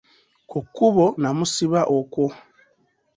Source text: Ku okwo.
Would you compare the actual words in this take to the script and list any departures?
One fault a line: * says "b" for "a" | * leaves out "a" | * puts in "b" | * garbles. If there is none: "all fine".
* puts in "kkubo namusiba"